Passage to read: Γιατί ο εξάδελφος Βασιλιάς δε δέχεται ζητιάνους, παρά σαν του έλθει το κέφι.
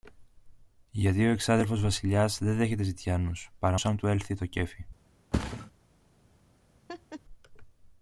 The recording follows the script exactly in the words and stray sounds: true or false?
false